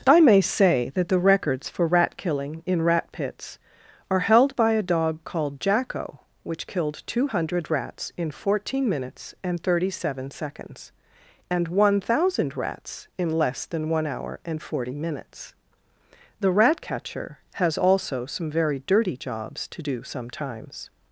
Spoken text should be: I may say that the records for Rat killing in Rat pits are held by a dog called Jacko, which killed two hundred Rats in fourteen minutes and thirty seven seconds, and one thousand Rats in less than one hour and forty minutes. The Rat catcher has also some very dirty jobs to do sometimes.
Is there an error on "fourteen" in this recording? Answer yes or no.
no